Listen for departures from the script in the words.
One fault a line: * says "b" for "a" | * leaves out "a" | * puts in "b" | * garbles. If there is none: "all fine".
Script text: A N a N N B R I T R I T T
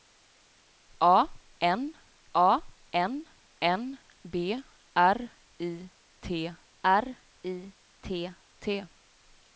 all fine